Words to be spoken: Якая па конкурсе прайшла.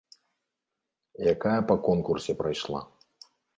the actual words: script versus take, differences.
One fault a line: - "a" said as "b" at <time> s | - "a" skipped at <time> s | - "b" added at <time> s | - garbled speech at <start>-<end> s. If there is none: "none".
none